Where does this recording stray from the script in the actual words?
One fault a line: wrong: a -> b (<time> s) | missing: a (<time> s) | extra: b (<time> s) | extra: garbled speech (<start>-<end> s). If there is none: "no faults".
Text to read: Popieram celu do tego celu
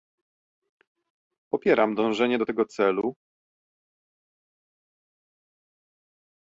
wrong: celu -> dążenie (1.9 s)